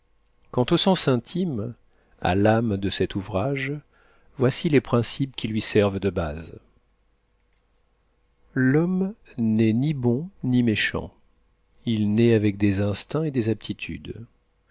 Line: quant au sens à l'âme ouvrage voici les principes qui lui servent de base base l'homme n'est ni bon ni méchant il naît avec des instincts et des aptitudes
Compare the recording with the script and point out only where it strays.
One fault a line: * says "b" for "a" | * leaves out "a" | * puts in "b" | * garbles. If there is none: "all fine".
* puts in "intime"
* puts in "de cet"
* leaves out "base"